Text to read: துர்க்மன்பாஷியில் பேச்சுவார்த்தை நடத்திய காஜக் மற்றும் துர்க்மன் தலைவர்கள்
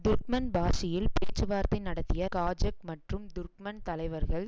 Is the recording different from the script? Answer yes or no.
no